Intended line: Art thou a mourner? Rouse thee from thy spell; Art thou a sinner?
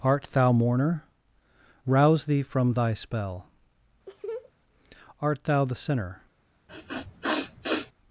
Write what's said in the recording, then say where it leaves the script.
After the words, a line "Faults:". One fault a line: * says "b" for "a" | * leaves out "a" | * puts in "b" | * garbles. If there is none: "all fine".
Art thou mourner? Rouse thee from thy spell; Art thou the sinner?
Faults:
* leaves out "a"
* says "the" for "a"